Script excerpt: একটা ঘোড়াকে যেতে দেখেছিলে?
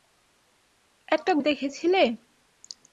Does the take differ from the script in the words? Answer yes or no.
yes